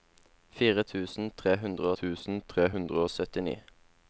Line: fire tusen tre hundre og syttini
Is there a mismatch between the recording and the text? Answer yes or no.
yes